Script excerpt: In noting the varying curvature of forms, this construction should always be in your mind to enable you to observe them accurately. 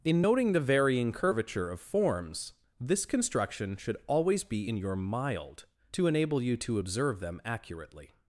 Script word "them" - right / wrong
right